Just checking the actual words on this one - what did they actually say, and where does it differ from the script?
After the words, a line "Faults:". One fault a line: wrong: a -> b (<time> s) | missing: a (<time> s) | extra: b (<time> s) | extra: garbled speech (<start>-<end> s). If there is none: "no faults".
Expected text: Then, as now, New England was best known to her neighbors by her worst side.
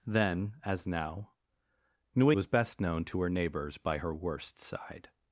Then, as now, New Was best known to her neighbors by her worst side.
Faults:
missing: England (2.3 s)